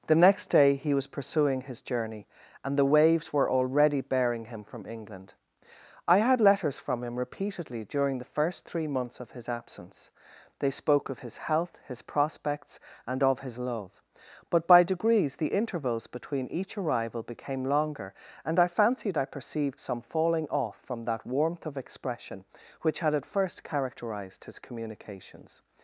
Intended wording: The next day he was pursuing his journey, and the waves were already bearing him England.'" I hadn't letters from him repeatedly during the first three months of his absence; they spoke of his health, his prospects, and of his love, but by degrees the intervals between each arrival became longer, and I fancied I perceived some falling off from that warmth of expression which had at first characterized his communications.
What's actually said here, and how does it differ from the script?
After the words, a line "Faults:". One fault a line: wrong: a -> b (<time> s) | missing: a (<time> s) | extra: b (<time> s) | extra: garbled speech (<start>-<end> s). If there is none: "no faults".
The next day he was pursuing his journey, and the waves were already bearing him from England.'" I had letters from him repeatedly during the first three months of his absence; they spoke of his health, his prospects, and of his love, but by degrees the intervals between each arrival became longer, and I fancied I perceived some falling off from that warmth of expression which had at first characterized his communications.
Faults:
extra: from (4.6 s)
wrong: hadn't -> had (6.2 s)